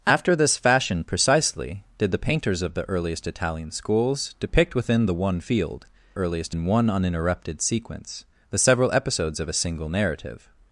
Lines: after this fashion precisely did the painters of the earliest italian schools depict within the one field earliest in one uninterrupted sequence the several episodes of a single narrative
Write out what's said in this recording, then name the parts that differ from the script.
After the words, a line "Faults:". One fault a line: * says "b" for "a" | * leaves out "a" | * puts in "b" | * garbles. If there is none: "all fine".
after this fashion precisely did the painters of the earliest italian schools depict within the one field earliest in one uninterrupted sequence the several episodes of a single narrative
Faults:
all fine